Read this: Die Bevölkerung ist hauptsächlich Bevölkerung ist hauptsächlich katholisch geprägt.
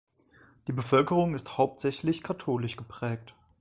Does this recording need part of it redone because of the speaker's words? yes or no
yes